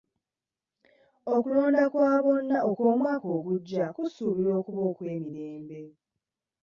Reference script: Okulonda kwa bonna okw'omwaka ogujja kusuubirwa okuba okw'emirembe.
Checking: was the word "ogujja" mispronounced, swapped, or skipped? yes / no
no